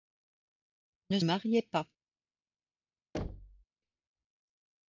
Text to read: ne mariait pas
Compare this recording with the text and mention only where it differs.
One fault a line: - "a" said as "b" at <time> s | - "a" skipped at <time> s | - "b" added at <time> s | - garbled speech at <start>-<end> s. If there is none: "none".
none